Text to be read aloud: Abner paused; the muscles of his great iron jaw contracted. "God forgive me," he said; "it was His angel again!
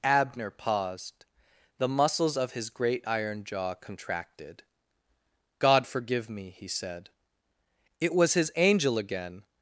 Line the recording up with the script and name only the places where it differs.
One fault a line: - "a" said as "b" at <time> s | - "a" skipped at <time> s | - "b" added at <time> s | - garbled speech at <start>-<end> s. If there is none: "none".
none